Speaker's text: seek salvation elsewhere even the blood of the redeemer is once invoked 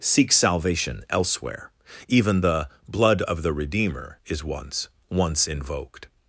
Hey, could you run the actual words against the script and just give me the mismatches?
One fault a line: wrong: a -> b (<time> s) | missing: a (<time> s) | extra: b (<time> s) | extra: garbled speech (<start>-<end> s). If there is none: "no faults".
extra: once (5.1 s)